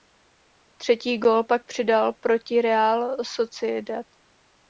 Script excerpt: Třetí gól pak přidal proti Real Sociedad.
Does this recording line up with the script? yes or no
yes